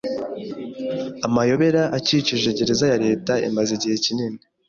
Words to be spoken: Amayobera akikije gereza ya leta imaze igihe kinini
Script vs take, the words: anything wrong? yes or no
no